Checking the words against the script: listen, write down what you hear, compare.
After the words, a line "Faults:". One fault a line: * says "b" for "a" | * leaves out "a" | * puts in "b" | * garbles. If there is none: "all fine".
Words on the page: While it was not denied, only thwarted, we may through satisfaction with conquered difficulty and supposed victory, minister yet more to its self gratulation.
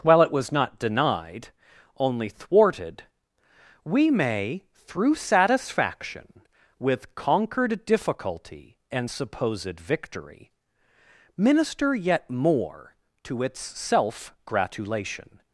While it was not denied, only thwarted, we may through satisfaction with conquered difficulty and supposed victory, minister yet more to its self gratulation.
Faults:
all fine